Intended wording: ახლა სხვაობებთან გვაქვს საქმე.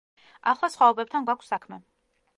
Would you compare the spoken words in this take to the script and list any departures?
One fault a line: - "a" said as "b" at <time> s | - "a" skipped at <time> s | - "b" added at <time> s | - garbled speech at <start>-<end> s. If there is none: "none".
none